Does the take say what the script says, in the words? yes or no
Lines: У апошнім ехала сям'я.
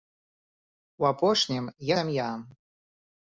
no